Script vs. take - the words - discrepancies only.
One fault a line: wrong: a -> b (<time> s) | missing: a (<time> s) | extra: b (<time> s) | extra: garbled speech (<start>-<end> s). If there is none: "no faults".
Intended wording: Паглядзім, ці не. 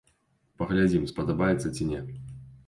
extra: спадабаецца (1.1 s)